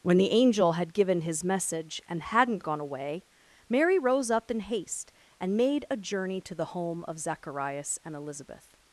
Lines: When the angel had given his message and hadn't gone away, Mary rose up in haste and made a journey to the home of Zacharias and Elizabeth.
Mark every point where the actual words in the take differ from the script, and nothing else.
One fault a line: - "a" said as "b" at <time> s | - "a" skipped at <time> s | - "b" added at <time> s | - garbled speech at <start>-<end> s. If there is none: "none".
none